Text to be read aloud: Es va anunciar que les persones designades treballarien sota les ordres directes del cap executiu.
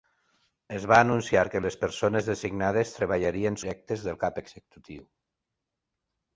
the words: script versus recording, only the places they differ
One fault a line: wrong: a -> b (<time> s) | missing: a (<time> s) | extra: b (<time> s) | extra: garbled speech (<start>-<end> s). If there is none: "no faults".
missing: sota les ordres (3.6 s)